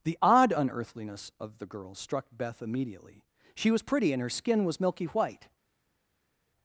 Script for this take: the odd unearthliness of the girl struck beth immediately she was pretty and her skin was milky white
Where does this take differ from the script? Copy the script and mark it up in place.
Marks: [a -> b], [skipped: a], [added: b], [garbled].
the odd unearthliness of the girl struck beth immediately she was pretty and her skin was milky white